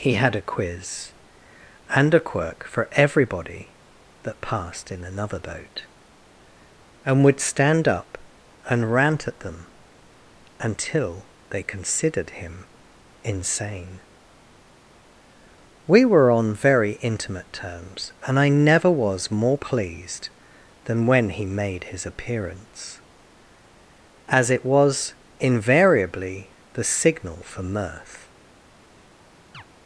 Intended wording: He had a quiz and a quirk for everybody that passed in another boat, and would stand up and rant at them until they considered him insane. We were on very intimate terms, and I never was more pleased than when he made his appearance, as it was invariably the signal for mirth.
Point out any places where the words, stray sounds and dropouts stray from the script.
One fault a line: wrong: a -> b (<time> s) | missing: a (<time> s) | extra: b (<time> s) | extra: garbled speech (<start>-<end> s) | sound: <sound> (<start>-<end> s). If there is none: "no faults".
sound: chirp (29.5-29.6 s)